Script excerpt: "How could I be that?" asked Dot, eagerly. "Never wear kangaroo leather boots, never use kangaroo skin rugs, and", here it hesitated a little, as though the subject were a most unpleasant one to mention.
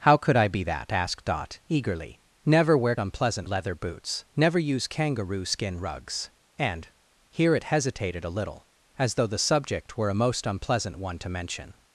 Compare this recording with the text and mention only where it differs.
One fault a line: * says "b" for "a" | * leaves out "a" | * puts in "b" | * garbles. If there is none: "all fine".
* says "unpleasant" for "kangaroo"